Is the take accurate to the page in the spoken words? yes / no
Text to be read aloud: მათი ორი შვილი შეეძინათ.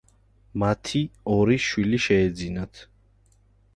yes